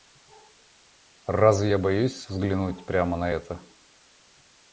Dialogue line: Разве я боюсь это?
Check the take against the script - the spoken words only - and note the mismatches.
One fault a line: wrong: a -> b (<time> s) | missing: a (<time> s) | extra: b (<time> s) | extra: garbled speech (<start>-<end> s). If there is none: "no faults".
extra: взглянуть прямо на (2.3 s)